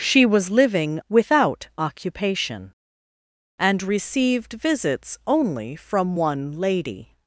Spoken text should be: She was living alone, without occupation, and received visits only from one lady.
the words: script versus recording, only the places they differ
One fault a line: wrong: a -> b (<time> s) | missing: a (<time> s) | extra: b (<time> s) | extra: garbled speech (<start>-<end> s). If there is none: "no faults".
missing: alone (1.0 s)